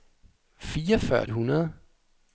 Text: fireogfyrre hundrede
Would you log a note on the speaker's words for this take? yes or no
no